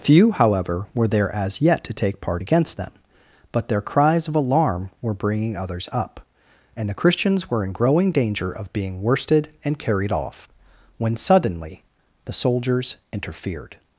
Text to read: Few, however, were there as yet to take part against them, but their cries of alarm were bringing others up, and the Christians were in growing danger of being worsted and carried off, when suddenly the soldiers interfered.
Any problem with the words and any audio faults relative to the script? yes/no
no